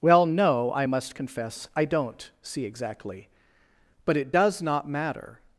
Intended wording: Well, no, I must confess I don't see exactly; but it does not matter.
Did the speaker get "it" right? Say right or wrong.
right